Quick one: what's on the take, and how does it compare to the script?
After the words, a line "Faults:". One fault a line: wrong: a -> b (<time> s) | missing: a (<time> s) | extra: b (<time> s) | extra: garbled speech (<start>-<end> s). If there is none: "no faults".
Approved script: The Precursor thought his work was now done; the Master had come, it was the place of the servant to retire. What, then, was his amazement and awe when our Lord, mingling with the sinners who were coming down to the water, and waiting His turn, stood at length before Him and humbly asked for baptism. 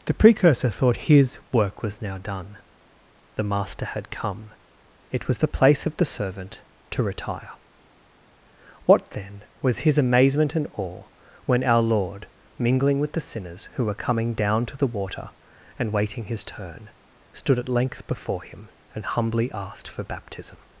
The Precursor thought his work was now done; the Master had come, it was the place of the servant to retire. What, then, was his amazement and awe when our Lord, mingling with the sinners who were coming down to the water, and waiting His turn, stood at length before Him and humbly asked for baptism.
Faults:
no faults